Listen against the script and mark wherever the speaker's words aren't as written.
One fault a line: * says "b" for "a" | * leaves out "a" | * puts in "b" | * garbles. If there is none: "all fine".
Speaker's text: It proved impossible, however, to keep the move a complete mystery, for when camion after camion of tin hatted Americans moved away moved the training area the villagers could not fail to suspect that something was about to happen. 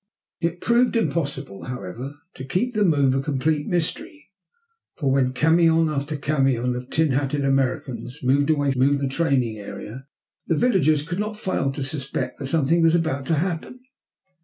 all fine